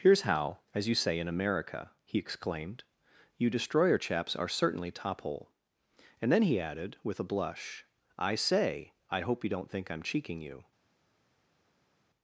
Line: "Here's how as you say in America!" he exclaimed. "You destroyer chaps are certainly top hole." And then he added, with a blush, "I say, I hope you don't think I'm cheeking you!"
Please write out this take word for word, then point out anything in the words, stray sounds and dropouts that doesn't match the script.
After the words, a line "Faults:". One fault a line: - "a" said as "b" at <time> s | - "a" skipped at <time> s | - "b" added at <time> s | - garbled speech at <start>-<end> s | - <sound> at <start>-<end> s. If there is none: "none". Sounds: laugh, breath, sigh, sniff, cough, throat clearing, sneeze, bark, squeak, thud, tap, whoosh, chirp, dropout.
"Here's how as you say in America!" he exclaimed. "You destroyer chaps are certainly top hole." And then he added, with a blush, "I say, I hope you don't think I'm cheeking you!"
Faults:
none